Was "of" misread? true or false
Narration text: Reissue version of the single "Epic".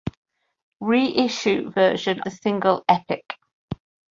true